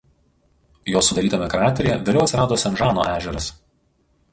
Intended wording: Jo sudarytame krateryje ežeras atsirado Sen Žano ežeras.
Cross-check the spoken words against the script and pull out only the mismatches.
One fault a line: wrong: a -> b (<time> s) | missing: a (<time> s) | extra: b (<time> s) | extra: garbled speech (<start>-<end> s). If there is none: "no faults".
wrong: ežeras -> vėliau (2.1 s)